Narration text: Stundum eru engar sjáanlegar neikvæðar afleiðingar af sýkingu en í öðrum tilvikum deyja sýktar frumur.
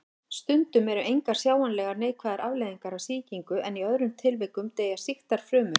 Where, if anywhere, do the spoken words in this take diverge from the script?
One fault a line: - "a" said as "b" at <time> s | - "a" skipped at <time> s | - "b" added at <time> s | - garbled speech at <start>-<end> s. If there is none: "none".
none